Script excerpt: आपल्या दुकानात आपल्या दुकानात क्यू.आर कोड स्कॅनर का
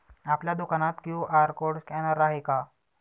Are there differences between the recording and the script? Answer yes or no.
yes